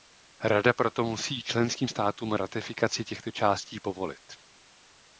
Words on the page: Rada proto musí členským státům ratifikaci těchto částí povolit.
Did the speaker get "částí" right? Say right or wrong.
right